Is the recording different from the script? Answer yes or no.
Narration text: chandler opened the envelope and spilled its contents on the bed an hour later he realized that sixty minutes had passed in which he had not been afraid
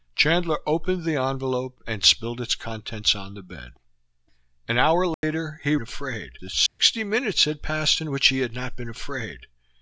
yes